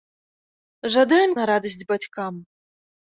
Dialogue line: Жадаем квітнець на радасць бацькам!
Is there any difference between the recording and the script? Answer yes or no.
yes